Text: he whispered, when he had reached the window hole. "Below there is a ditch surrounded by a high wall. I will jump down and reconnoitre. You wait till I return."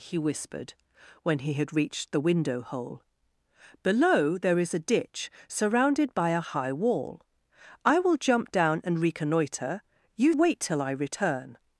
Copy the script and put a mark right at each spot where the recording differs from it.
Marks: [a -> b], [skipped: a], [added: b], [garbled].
he whispered, when he had reached the window hole. "Below there is a ditch surrounded by a high wall. I will jump down and reconnoitre. You wait till I return."